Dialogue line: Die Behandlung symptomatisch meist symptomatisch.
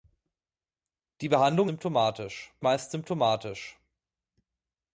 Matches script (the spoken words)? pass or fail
pass